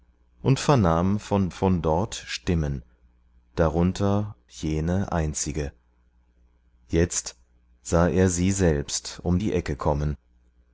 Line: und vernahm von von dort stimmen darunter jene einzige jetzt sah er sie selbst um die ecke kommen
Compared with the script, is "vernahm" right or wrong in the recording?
right